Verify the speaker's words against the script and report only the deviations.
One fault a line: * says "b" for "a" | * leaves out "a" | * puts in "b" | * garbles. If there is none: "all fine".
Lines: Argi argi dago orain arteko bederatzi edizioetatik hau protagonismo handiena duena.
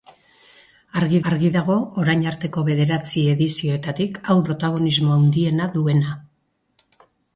all fine